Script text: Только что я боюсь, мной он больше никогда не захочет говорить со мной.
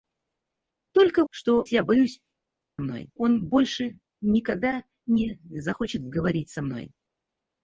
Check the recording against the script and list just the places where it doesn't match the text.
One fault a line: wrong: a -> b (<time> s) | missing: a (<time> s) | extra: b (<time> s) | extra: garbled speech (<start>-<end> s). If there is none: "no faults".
no faults